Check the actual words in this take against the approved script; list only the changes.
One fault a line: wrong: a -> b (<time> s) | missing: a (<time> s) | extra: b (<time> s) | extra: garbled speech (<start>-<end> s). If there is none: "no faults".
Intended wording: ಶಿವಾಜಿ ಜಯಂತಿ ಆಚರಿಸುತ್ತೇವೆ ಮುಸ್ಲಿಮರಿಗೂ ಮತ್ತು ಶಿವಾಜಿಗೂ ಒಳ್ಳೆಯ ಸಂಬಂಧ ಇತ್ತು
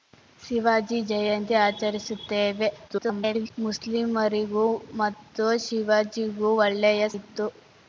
extra: garbled speech (2.9-3.5 s)
missing: ಸಂಬಂಧ (7.1 s)